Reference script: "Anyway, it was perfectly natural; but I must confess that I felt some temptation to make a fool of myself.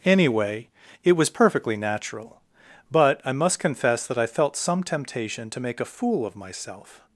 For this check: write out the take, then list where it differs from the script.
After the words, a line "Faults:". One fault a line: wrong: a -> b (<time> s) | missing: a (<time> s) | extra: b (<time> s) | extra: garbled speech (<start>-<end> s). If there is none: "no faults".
"Anyway, it was perfectly natural; but I must confess that I felt some temptation to make a fool of myself.
Faults:
no faults